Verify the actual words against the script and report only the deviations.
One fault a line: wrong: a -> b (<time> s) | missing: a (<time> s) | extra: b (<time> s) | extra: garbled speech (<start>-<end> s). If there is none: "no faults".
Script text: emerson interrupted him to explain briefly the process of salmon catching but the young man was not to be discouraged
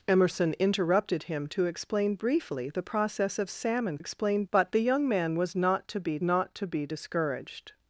wrong: catching -> explain (4.0 s)
extra: not to be (6.2 s)